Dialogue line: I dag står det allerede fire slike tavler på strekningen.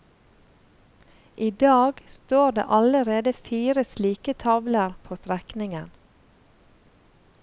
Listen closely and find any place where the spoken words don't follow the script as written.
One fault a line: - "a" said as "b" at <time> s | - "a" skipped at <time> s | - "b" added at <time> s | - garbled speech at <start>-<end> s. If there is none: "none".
none